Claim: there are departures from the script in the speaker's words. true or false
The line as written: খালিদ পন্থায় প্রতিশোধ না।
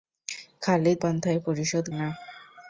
false